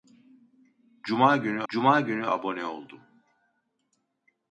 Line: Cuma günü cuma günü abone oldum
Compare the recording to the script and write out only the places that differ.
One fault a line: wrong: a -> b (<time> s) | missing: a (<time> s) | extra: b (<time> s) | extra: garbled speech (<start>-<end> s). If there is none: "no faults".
no faults